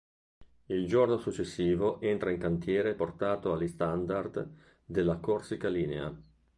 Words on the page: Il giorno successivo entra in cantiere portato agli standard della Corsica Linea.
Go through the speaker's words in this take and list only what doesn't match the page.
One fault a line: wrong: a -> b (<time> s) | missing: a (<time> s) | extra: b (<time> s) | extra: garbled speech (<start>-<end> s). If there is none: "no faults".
no faults